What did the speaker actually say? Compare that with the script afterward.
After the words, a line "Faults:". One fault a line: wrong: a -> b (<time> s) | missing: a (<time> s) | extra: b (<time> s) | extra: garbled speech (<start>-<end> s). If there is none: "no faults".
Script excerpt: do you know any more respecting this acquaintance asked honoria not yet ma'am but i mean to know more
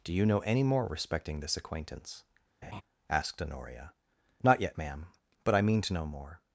do you know any more respecting this acquaintance asked honoria not yet ma'am but i mean to know more
Faults:
no faults